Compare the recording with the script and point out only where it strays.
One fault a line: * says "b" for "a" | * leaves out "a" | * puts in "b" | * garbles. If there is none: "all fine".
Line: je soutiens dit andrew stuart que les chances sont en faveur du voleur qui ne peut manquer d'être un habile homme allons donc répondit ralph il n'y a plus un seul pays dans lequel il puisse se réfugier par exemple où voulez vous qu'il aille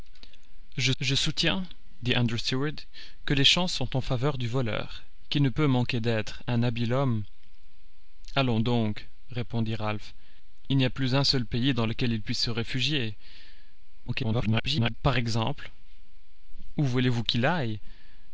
* puts in "je"
* garbles